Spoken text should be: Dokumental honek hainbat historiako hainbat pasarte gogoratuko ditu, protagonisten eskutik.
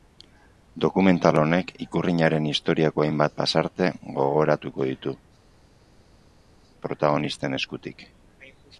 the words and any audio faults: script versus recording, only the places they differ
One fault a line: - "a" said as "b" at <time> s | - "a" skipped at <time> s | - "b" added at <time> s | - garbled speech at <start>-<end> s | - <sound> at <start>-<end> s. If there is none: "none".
- "hainbat" said as "ikurrinaren" at 1.8 s